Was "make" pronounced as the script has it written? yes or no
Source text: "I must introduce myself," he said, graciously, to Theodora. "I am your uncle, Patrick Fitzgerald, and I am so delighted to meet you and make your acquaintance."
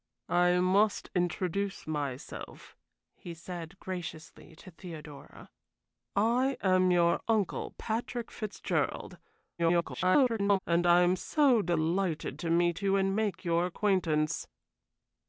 yes